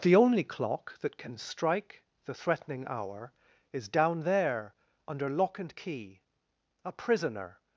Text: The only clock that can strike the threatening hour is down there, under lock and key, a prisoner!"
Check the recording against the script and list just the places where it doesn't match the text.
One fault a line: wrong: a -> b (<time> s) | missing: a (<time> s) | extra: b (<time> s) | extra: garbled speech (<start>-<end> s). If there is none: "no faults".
no faults